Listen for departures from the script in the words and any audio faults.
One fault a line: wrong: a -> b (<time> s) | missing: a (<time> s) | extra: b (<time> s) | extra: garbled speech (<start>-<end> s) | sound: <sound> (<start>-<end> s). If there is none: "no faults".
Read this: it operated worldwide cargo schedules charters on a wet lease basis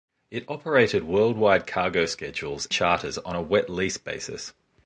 no faults